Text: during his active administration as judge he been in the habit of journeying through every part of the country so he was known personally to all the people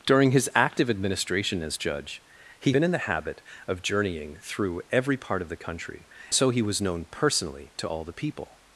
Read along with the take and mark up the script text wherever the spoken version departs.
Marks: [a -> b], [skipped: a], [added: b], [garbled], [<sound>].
during his active administration as judge he been in the habit of journeying through every part of the country so he was known personally to all the people